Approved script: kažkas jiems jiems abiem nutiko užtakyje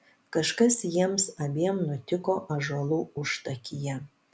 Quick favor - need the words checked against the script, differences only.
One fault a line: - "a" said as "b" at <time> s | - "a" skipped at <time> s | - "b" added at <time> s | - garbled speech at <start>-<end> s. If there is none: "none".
- "jiems" skipped at 1.3 s
- "ąžuolų" added at 2.6 s